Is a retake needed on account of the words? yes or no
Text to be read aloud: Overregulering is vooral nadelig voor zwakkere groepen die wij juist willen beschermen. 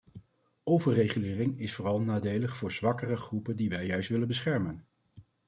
no